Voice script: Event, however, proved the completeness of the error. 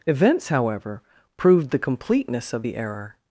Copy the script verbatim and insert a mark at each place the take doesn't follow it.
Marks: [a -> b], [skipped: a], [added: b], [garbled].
[Event, -> Events] however, proved the completeness of the error.